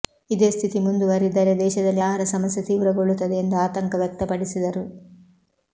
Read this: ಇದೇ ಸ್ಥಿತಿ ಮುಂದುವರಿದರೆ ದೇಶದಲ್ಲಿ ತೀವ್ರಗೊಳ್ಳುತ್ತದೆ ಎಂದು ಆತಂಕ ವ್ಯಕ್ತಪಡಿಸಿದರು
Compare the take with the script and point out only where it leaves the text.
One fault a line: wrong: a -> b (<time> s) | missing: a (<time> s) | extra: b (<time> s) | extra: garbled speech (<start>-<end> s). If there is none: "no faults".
extra: ಆಹಾರ ಸಮಸ್ಯೆ (2.0 s)